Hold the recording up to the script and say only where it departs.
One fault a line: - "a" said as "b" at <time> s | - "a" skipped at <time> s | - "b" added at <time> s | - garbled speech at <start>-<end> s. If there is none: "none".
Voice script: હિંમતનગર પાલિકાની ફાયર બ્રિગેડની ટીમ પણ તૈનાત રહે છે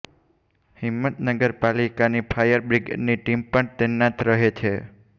none